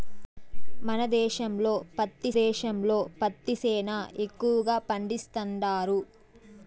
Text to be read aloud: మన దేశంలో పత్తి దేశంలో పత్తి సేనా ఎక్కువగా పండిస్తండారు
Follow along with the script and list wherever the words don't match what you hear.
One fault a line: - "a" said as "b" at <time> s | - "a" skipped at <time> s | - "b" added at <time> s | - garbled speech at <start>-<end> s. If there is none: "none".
none